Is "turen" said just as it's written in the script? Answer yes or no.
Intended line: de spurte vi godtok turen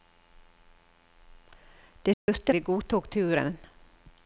yes